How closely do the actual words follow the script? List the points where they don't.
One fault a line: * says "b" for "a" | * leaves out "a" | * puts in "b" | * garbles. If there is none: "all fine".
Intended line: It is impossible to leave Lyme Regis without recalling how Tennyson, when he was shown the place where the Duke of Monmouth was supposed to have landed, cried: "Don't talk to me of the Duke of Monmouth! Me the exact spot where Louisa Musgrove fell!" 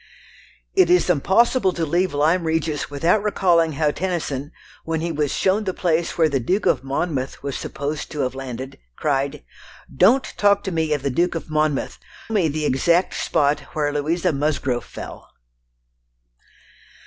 all fine